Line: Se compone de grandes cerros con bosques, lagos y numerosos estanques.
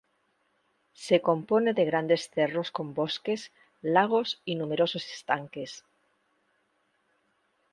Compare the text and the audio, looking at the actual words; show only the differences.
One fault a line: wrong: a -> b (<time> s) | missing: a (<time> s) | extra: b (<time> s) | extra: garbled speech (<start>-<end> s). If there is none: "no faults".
no faults